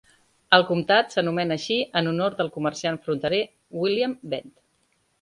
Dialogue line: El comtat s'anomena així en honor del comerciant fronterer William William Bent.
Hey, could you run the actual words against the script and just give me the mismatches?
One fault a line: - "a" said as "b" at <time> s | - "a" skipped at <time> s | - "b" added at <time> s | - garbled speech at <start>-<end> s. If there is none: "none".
- "William" skipped at 4.2 s